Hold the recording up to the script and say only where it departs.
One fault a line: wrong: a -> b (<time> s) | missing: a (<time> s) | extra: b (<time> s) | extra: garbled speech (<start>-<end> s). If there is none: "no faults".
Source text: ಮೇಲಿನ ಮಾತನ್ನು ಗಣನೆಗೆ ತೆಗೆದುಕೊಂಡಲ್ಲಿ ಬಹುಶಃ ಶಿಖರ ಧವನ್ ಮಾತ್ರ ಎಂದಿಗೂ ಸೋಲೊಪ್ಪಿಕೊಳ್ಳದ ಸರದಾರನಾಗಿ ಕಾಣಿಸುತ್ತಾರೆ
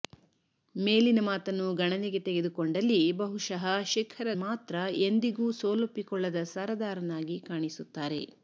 missing: ಧವನ್ (4.3 s)